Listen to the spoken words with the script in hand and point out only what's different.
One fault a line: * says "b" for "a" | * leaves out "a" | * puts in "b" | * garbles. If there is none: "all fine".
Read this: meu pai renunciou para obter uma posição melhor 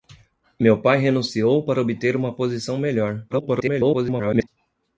* garbles